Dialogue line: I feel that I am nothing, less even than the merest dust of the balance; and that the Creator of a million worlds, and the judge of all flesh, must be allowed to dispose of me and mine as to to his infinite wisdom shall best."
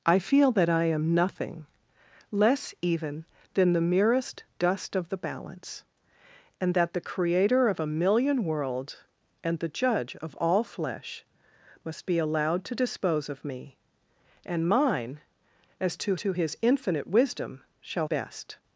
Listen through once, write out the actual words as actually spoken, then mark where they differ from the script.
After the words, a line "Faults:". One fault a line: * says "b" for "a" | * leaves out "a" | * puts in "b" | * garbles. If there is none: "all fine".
I feel that I am nothing, less even than the merest dust of the balance; and that the Creator of a million worlds, and the judge of all flesh, must be allowed to dispose of me and mine as to to his infinite wisdom shall best."
Faults:
all fine